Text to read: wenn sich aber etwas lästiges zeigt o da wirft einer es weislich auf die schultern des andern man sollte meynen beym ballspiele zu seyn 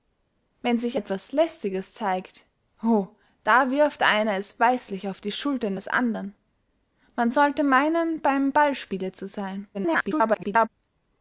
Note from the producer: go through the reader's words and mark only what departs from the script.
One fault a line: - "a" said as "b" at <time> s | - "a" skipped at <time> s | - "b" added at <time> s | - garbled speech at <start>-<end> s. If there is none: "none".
- "aber" skipped at 1.0 s
- garbled speech at 9.7-10.7 s